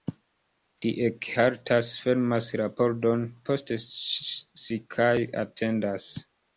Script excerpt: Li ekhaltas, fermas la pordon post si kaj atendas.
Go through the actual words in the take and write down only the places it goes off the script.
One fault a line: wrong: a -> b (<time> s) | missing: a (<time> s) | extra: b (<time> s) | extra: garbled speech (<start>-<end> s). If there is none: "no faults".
no faults